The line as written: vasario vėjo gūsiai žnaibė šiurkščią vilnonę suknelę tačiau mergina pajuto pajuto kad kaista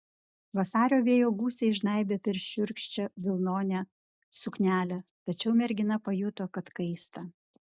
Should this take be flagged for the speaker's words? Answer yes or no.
yes